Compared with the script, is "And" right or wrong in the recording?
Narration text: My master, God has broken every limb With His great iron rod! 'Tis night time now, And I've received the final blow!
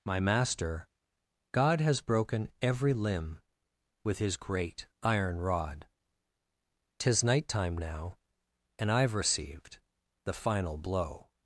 right